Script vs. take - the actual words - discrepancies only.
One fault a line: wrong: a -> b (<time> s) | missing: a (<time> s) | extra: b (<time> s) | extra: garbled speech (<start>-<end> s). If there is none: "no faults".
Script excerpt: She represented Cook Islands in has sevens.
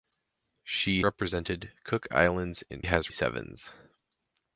no faults